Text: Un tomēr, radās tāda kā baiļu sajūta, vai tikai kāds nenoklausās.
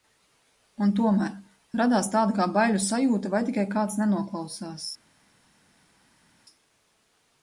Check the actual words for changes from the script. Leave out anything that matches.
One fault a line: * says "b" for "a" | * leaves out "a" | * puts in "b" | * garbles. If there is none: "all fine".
all fine